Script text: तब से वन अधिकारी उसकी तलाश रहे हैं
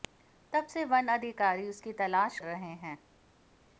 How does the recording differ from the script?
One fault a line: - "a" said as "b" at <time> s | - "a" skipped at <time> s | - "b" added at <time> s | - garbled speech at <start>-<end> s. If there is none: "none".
none